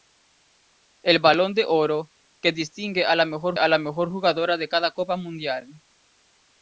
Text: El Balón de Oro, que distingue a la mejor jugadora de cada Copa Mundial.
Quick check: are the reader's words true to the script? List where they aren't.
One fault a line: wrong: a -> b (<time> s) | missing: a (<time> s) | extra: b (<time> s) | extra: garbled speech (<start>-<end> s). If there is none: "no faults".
extra: a la mejor (3.6 s)